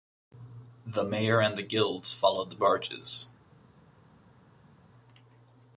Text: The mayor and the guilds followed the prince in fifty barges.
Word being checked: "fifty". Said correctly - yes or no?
no